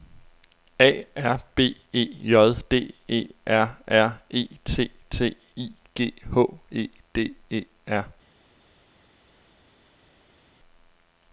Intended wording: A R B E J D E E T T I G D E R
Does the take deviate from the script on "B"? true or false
false